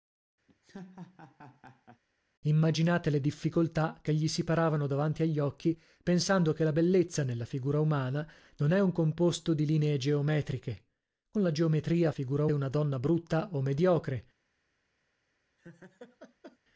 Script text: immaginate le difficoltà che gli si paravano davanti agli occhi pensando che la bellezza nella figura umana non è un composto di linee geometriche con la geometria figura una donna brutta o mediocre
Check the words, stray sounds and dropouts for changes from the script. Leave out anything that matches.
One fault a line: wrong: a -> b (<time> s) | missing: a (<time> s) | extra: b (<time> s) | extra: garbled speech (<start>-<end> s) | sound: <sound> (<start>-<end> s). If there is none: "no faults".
sound: laugh (0.5-2.0 s)
sound: laugh (15.6-16.6 s)